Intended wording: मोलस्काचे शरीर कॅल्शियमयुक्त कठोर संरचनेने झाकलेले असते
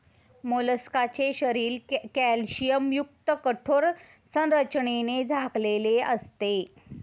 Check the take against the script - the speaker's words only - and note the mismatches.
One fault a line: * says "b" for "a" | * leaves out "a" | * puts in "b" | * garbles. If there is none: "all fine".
all fine